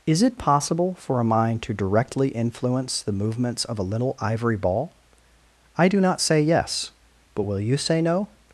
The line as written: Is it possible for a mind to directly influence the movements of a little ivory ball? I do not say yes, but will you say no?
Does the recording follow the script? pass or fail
pass